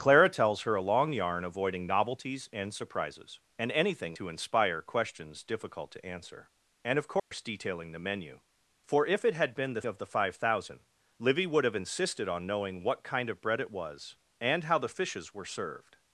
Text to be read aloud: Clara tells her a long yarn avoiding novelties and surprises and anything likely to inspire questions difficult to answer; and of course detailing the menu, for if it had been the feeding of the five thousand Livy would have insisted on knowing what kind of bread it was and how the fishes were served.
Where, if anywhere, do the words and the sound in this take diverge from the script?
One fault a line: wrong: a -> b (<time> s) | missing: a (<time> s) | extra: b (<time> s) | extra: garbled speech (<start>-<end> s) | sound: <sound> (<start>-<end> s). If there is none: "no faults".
missing: likely (4.2 s)
sound: dropout (7.2-7.3 s)
missing: feeding (9.8 s)